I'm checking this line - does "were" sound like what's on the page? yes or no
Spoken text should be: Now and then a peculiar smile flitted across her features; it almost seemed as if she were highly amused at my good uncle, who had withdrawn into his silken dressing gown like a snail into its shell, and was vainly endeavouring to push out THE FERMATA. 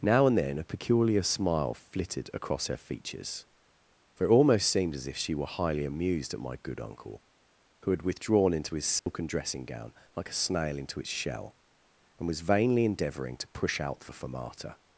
yes